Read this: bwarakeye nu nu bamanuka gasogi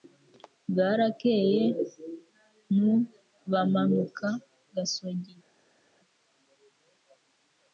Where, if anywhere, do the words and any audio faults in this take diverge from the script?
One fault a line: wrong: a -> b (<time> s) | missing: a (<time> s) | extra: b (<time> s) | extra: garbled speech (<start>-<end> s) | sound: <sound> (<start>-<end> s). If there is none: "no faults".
missing: nu (2.9 s)